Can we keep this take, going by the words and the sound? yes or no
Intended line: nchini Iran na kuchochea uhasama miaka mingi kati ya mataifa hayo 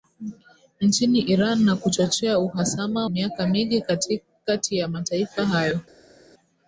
yes